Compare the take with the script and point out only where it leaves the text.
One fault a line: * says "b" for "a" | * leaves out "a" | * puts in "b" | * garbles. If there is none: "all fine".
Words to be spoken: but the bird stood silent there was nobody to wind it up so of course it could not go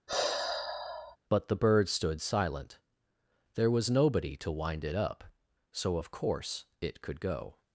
* leaves out "not"